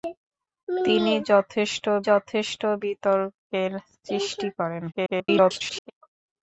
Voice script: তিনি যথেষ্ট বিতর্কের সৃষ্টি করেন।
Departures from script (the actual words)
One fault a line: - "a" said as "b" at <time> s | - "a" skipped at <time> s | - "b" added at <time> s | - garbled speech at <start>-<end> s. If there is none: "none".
- "যথেষ্ট" added at 2.1 s
- garbled speech at 4.9-5.9 s